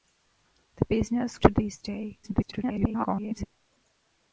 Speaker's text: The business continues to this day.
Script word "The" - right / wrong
right